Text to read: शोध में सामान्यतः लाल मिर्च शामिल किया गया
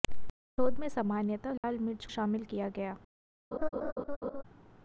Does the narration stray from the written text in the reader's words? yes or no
no